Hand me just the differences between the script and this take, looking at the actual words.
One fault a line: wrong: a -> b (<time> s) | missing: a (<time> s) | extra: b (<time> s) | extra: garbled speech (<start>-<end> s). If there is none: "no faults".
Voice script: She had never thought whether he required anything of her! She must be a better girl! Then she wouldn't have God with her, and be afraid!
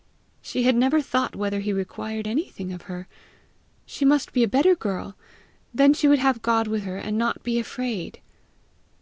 wrong: wouldn't -> would (6.1 s)
extra: not (7.2 s)